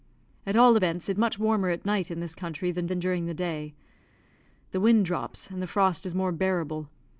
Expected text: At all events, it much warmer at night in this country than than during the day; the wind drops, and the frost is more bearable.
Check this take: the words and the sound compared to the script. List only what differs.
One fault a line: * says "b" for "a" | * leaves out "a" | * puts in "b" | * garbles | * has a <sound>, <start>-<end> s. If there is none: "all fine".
all fine